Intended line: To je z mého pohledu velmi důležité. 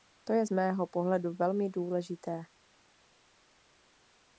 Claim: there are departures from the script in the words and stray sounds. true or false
false